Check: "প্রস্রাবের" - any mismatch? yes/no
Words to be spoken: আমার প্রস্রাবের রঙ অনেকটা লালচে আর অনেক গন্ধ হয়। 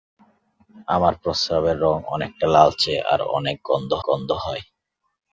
no